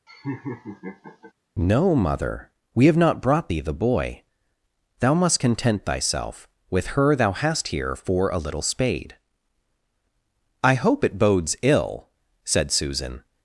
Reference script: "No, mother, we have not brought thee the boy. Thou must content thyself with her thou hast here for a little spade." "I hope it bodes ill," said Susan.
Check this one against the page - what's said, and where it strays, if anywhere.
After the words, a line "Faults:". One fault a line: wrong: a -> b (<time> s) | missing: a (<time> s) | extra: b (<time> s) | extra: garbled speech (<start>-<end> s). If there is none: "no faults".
"No, mother, we have not brought thee the boy. Thou must content thyself with her thou hast here for a little spade." "I hope it bodes ill," said Susan.
Faults:
no faults